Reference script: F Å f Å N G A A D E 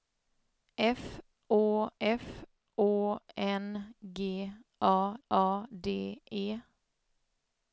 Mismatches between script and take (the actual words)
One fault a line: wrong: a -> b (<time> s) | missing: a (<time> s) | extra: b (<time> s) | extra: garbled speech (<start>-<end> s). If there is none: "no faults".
no faults